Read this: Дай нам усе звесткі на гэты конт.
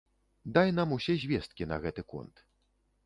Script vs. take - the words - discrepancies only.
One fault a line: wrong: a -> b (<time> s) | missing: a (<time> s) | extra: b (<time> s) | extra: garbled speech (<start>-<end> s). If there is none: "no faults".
no faults